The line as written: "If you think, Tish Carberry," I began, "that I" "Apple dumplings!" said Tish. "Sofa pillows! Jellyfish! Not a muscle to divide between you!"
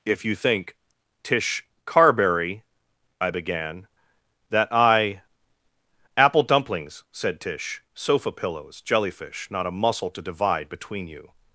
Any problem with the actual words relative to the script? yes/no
no